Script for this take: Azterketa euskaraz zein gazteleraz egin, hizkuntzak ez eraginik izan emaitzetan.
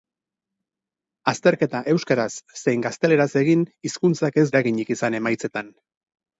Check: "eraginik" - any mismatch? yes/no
no